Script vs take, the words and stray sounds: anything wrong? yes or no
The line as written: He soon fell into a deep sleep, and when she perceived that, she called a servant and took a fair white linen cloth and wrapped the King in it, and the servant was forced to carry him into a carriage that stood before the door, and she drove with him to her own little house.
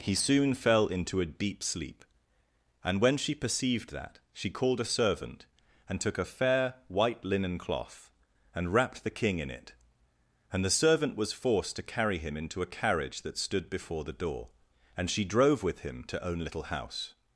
yes